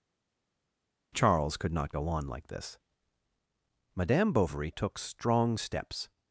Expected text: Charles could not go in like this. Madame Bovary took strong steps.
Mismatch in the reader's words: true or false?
true